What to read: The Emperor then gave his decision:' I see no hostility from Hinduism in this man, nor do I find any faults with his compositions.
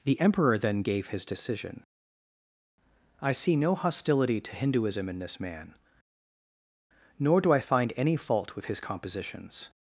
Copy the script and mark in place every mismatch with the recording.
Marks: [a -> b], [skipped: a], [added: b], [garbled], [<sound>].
The Emperor then gave his decision:' I see no hostility [from -> to] Hinduism in this man, nor do I find any [faults -> fault] with his compositions.